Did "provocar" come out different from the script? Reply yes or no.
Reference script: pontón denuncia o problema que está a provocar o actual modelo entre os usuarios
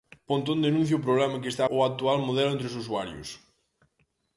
yes